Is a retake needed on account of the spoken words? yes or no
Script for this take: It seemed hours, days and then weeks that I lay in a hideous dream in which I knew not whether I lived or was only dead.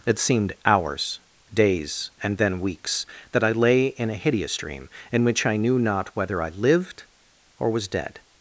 yes